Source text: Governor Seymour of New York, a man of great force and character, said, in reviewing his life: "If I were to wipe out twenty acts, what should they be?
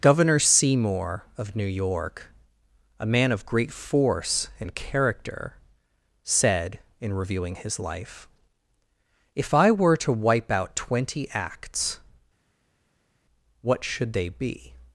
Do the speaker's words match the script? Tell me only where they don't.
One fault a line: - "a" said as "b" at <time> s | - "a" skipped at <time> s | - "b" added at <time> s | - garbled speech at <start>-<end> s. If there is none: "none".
none